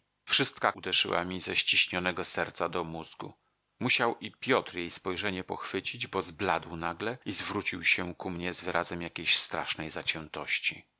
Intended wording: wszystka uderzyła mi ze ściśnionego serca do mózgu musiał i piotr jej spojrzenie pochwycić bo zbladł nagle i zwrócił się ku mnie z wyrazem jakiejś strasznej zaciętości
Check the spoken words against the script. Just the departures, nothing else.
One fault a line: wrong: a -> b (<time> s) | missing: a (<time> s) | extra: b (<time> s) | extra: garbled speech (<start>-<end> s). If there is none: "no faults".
no faults